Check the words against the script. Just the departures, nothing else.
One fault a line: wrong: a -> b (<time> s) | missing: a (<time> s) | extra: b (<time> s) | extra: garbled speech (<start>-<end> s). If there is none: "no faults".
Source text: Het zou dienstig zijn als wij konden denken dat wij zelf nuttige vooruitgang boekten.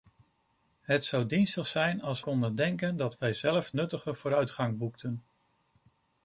missing: wij (2.2 s)